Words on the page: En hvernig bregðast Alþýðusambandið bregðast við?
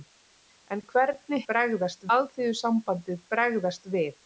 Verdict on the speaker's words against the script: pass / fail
pass